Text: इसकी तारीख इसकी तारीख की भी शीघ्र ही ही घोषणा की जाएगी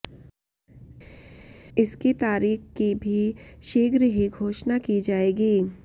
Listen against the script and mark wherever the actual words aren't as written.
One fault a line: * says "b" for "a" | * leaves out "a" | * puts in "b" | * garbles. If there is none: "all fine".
* leaves out "इसकी तारीख"
* leaves out "ही"